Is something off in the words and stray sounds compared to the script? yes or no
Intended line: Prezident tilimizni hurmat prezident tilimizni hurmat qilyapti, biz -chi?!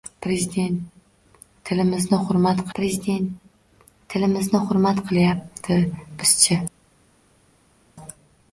no